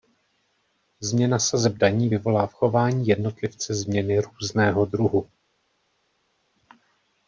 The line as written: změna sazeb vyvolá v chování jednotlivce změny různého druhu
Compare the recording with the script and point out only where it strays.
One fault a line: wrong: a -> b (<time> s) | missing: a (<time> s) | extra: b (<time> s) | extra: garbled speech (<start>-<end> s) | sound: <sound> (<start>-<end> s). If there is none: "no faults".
extra: daní (1.7 s)